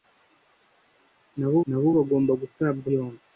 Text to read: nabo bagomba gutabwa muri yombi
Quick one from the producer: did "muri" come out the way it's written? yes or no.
no